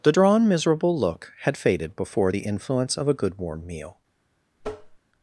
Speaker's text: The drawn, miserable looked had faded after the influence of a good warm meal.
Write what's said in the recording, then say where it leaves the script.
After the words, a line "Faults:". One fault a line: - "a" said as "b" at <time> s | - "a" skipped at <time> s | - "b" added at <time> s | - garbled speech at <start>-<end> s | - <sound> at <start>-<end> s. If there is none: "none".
The drawn, miserable look had faded before the influence of a good warm meal.
Faults:
- "looked" said as "look" at 1.0 s
- "after" said as "before" at 1.9 s
- tap at 4.6-5.0 s